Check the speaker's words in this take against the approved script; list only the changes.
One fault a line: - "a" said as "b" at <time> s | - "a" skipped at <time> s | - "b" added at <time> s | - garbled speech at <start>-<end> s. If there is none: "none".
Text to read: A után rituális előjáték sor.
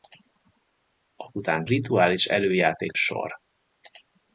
none